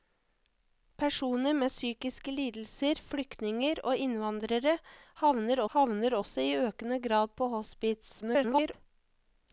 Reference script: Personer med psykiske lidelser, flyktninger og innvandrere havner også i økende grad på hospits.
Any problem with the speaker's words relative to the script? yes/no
yes